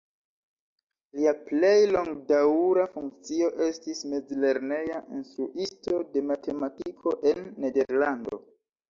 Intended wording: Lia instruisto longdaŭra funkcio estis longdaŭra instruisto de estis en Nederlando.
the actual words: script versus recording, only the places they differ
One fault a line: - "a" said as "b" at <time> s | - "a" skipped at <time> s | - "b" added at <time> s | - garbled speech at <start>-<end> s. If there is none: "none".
- "instruisto" said as "plej" at 1.5 s
- "longdaŭra" said as "mezlerneja" at 4.1 s
- "estis" said as "matematiko" at 6.3 s